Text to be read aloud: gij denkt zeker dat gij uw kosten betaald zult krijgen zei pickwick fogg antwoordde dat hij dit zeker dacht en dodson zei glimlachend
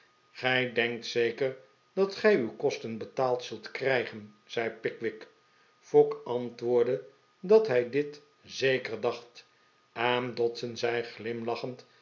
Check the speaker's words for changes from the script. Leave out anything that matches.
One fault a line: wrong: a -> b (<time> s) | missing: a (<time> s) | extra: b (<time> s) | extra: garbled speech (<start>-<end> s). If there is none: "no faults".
no faults